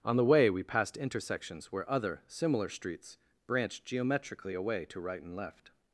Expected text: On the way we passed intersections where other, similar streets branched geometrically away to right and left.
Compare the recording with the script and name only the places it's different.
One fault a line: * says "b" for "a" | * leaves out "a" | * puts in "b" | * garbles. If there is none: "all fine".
all fine